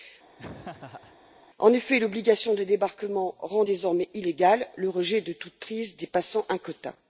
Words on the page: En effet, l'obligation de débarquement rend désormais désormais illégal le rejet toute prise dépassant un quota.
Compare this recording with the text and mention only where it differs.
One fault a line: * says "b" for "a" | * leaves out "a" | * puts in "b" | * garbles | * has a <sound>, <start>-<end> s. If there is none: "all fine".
* has a laugh, 0.4-1.2 s
* leaves out "désormais"
* puts in "de"